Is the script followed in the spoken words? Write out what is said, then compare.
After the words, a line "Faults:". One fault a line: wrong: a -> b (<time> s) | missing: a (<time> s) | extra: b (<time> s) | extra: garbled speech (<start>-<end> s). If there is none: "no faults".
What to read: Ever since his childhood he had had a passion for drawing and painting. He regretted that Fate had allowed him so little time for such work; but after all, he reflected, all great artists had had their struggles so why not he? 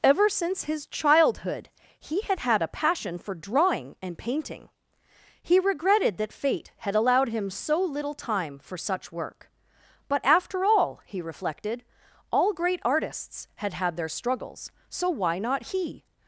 Ever since his childhood he had had a passion for drawing and painting. He regretted that Fate had allowed him so little time for such work; but after all, he reflected, all great artists had had their struggles so why not he?
Faults:
no faults